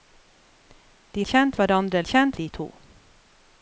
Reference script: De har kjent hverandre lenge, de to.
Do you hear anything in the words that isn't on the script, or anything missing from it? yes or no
yes